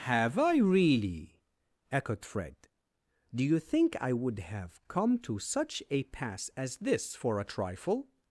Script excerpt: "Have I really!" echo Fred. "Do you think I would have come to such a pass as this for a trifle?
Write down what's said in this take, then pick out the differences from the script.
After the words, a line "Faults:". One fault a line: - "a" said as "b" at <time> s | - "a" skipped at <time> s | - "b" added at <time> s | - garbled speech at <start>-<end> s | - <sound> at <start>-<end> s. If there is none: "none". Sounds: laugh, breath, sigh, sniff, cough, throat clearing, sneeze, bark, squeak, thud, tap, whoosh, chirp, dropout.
"Have I really!" echoed Fred. "Do you think I would have come to such a pass as this for a trifle?
Faults:
- "echo" said as "echoed" at 1.9 s